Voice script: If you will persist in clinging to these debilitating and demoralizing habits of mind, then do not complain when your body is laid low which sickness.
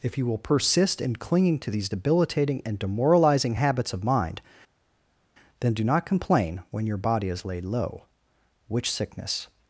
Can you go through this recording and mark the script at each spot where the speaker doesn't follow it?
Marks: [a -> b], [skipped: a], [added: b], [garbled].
If you will persist in clinging to these debilitating and demoralizing habits of mind, then do not complain when your body is laid low which sickness.